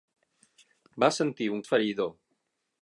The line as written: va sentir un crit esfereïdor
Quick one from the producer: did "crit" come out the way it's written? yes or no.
no